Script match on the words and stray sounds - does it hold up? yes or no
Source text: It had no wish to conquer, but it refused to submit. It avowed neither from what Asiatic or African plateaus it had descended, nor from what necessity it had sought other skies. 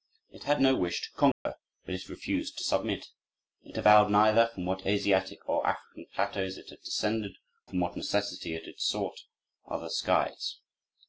no